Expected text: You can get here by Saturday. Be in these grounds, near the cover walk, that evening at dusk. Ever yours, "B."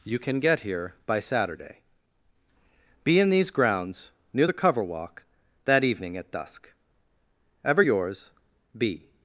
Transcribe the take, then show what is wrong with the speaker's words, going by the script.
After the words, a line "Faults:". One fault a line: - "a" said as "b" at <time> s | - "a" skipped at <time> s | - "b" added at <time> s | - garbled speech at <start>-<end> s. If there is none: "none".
You can get here by Saturday. Be in these grounds, near the cover walk, that evening at dusk. Ever yours, "B."
Faults:
none